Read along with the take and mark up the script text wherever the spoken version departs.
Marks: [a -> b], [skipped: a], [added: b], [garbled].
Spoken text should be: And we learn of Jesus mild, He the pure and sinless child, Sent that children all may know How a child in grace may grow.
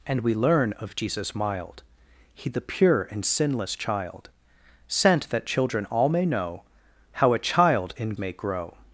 And we learn of Jesus mild, He the pure and sinless child, Sent that children all may know How a child in [skipped: grace] may grow.